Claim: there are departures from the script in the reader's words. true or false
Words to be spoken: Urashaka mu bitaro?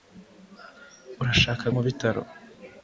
false